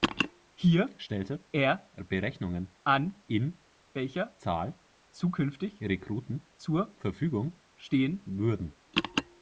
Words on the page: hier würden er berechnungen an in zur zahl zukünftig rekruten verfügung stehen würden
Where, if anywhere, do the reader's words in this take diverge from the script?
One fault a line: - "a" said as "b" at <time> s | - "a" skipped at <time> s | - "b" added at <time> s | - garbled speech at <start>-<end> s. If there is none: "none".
- "würden" said as "stellte" at 1.0 s
- "zur" said as "welcher" at 3.9 s
- "zur" added at 6.6 s